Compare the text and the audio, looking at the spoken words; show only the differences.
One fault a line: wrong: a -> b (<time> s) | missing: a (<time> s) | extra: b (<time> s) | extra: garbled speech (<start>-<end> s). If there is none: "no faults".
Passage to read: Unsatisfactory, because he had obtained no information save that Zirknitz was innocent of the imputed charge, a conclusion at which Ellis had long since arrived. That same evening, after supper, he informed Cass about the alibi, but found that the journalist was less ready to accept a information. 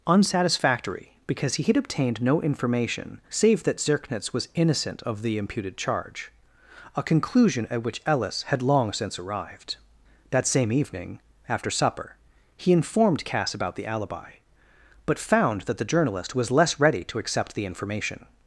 wrong: a -> the (17.6 s)